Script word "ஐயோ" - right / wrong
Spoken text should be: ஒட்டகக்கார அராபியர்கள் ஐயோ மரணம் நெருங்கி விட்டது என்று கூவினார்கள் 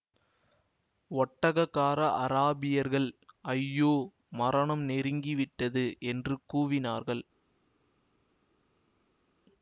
right